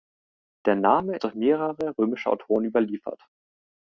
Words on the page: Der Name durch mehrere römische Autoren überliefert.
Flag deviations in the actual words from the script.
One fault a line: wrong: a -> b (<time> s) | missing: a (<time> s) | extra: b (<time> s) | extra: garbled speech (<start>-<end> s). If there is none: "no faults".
no faults